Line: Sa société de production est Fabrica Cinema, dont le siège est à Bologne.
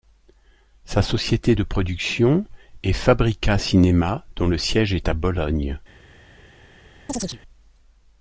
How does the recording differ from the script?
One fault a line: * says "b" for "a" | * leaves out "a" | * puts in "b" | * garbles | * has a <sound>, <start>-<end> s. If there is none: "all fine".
* has a chirp, 7.1-7.4 s